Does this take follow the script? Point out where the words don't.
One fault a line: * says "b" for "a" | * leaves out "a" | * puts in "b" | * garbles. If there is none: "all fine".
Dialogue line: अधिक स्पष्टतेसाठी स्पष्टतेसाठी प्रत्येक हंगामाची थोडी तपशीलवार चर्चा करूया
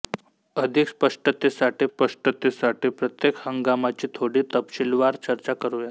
all fine